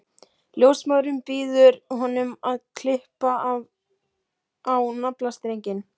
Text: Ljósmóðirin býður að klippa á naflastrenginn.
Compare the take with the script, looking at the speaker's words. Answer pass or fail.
fail